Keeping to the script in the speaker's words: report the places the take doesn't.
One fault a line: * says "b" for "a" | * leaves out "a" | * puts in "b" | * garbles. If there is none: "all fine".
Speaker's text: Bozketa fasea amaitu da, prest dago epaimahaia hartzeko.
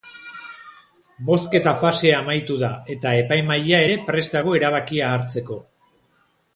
* puts in "eta epaimahaia ere"
* says "erabakia" for "epaimahaia"